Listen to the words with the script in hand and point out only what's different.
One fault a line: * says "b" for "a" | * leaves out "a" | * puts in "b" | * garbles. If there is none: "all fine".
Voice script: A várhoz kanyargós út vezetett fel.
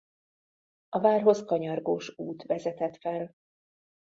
all fine